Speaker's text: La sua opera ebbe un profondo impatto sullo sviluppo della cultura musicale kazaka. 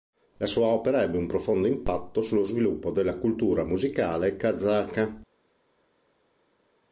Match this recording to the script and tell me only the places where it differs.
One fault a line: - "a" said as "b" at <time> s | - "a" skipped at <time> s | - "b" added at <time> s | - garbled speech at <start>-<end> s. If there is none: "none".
none